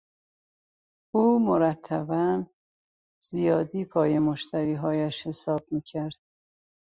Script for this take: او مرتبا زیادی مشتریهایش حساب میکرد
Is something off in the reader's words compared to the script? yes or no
yes